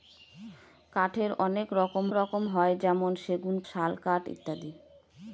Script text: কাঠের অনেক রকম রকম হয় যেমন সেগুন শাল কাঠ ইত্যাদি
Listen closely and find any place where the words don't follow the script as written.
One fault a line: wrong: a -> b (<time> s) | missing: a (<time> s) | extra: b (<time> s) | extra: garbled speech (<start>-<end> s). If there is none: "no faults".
no faults